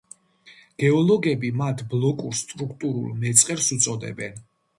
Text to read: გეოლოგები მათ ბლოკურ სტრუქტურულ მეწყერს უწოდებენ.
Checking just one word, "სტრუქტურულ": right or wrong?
right